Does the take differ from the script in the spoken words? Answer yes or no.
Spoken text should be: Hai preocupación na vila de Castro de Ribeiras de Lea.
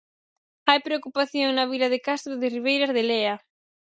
no